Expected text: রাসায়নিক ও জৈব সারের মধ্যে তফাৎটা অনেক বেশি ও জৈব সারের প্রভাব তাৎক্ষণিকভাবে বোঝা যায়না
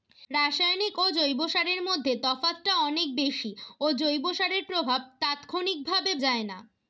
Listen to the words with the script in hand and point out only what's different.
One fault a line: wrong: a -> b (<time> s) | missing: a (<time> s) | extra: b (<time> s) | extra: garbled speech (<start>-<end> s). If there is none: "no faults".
missing: বোঝা (6.1 s)